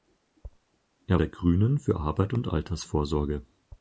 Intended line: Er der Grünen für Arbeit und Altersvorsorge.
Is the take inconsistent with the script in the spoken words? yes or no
no